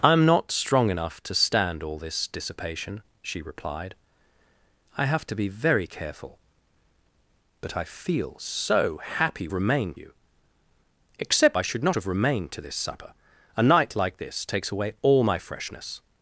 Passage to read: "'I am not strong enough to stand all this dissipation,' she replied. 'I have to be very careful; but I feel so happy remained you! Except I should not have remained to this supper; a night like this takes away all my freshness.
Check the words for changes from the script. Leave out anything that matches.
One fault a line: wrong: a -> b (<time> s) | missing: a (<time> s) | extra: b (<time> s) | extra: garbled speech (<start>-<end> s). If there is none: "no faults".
no faults